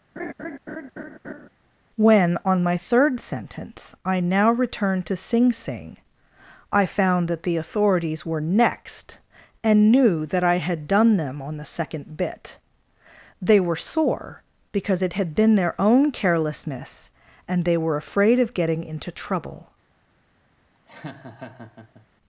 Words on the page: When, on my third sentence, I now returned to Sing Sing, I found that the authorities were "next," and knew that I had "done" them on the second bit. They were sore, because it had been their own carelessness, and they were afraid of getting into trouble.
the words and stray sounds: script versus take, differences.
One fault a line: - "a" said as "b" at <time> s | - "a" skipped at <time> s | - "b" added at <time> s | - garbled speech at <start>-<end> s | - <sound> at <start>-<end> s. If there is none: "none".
- laugh at 0.2-1.5 s
- laugh at 20.7-22.1 s